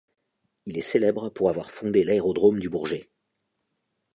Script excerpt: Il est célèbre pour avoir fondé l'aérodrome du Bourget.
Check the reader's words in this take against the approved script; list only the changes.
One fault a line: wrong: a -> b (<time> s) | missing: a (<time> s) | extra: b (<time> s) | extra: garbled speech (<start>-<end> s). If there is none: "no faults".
no faults